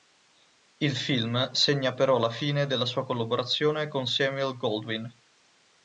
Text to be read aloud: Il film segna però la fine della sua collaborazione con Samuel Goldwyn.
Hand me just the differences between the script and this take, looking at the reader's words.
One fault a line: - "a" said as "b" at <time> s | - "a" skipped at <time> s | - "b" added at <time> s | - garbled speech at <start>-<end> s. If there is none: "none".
none